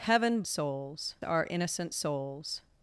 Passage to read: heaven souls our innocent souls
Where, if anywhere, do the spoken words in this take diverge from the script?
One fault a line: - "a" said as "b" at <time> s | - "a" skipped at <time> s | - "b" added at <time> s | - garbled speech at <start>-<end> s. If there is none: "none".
none